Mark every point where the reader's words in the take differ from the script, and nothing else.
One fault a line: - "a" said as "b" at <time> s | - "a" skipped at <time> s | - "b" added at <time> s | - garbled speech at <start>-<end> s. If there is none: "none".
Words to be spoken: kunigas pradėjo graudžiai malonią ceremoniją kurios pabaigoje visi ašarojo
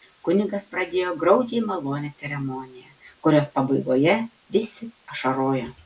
none